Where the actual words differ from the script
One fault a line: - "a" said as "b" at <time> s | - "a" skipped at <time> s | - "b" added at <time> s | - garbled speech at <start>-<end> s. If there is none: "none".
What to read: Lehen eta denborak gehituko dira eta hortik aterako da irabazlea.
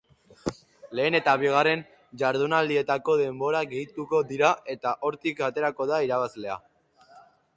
- "bigarren jardunaldietako" added at 1.4 s